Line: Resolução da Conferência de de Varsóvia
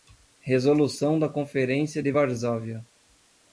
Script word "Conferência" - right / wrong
right